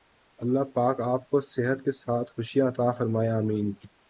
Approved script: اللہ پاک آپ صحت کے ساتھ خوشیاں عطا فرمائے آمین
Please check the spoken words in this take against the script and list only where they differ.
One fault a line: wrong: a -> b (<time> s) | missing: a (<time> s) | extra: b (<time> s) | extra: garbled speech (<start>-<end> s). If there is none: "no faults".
extra: کو (1.3 s)